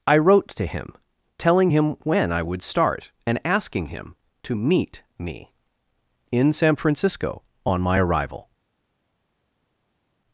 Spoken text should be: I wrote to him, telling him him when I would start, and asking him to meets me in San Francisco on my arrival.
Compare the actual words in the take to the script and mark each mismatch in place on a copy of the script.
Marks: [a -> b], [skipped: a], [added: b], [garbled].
I wrote to him, telling him [skipped: him] when I would start, and asking him to [meets -> meet] me in San Francisco on my arrival.